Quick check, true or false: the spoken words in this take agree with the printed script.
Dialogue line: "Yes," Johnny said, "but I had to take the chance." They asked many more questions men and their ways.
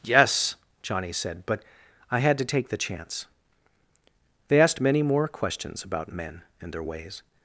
false